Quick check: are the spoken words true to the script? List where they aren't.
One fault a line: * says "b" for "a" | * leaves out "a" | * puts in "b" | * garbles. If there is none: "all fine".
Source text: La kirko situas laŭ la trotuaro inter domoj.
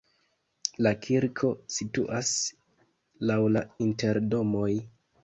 * leaves out "trotuaro"